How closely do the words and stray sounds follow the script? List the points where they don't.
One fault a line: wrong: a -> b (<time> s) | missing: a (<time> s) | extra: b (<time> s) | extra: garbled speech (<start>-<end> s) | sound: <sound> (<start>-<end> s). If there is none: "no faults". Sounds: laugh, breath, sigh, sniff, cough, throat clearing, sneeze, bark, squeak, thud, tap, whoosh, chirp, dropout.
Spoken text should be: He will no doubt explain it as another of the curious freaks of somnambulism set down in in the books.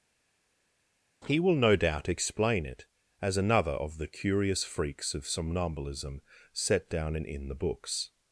no faults